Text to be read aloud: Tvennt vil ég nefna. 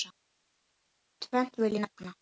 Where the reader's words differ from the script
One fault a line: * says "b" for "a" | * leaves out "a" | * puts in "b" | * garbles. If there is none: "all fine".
all fine